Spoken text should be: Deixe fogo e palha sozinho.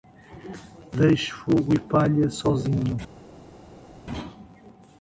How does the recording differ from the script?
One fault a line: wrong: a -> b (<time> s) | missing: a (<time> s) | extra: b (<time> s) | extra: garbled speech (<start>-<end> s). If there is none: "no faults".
no faults